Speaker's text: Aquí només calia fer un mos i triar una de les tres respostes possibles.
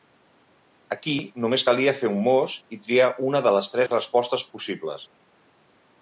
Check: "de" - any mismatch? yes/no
no